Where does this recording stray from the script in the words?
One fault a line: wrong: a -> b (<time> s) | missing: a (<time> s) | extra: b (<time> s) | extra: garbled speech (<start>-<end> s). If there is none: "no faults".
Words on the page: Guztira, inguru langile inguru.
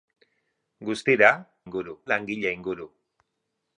no faults